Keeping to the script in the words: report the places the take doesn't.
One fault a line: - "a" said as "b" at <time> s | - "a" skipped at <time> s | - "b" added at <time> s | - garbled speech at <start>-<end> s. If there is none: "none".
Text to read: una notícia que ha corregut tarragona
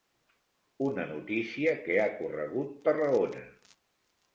none